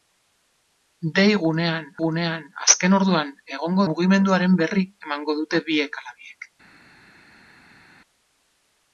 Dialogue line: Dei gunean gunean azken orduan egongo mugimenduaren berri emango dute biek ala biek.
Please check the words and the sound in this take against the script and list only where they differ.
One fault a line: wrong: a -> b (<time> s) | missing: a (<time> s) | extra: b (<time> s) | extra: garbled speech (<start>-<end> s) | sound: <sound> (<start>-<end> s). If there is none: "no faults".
no faults